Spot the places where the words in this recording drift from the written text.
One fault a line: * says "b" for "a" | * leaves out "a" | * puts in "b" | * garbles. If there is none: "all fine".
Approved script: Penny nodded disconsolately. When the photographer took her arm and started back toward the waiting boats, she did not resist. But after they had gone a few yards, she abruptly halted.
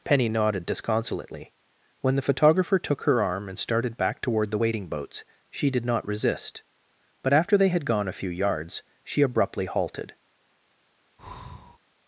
all fine